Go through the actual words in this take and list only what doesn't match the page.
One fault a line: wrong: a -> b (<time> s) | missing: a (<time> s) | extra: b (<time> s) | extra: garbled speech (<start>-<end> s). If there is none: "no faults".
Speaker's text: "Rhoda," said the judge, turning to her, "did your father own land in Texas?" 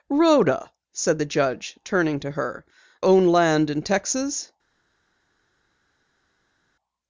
missing: did your father (2.6 s)